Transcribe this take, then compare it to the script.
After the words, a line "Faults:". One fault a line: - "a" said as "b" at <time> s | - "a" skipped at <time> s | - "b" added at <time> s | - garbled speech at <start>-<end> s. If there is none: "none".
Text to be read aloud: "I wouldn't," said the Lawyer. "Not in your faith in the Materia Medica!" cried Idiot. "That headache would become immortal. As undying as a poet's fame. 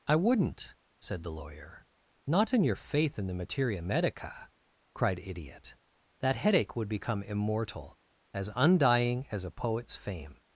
"I wouldn't," said the Lawyer. "Not in your faith in the Materia Medica!" cried Idiot. "That headache would become immortal. As undying as a poet's fame.
Faults:
none